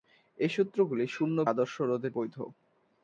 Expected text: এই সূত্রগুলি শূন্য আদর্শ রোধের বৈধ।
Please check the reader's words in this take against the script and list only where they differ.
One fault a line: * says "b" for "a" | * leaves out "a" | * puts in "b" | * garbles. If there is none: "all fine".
all fine